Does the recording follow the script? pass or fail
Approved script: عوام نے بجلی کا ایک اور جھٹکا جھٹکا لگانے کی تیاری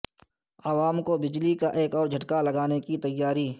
fail